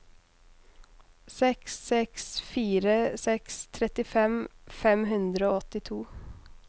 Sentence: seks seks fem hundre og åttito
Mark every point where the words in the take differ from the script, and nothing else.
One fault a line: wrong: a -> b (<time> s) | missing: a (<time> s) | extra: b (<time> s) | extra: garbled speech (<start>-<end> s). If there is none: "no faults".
extra: fire seks trettifem (2.5 s)